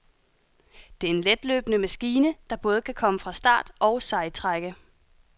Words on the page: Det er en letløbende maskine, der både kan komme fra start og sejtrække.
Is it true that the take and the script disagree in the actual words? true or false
false